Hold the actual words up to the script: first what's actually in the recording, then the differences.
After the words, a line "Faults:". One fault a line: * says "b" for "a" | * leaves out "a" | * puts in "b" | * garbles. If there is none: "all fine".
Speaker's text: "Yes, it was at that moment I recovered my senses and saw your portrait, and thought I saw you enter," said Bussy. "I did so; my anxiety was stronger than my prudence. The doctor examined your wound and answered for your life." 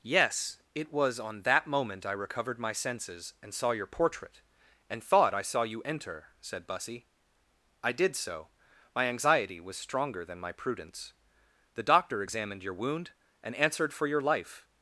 "Yes, it was on that moment I recovered my senses and saw your portrait, and thought I saw you enter," said Bussy. "I did so; my anxiety was stronger than my prudence. The doctor examined your wound and answered for your life."
Faults:
* says "on" for "at"